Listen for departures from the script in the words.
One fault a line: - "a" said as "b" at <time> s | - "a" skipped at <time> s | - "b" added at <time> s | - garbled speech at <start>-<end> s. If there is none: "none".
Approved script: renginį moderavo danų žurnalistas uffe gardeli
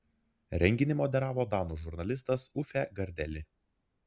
none